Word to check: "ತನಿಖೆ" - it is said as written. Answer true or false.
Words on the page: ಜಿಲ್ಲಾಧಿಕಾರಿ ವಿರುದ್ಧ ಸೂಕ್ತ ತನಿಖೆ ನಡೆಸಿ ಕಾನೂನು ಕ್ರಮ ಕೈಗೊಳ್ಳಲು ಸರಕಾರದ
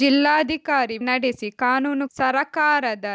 false